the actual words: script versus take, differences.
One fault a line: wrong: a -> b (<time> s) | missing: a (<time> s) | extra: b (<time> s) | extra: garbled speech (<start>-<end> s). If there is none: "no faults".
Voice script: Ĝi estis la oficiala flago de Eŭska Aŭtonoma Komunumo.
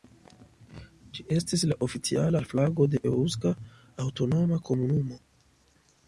no faults